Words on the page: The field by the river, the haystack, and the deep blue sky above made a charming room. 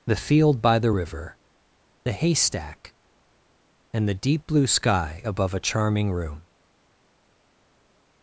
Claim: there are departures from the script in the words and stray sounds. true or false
true